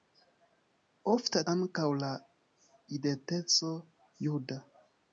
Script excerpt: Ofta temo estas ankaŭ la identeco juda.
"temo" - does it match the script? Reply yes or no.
no